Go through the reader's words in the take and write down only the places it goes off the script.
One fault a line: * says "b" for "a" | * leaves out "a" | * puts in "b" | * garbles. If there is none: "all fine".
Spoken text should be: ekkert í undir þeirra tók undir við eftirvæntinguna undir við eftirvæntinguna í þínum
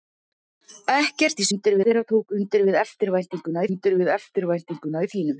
all fine